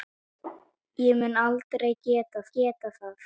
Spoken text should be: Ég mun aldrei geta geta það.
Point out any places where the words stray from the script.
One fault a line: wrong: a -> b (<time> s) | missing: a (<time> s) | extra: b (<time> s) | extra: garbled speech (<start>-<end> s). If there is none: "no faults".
no faults